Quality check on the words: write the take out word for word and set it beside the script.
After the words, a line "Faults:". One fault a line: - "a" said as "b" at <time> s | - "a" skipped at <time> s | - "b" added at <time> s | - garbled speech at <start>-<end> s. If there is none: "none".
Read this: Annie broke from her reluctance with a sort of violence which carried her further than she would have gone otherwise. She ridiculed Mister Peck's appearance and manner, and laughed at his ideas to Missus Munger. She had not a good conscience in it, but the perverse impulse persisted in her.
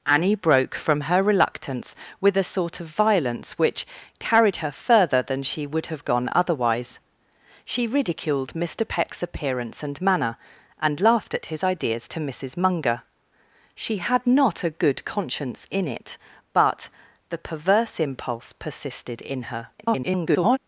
Annie broke from her reluctance with a sort of violence which carried her further than she would have gone otherwise. She ridiculed Mister Peck's appearance and manner, and laughed at his ideas to Missus Munger. She had not a good conscience in it, but the perverse impulse persisted in her. [garbled]
Faults:
- garbled speech at 19.8-20.6 s